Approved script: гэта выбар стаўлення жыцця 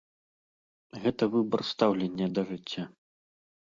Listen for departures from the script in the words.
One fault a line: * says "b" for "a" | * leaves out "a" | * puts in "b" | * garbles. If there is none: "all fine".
* puts in "да"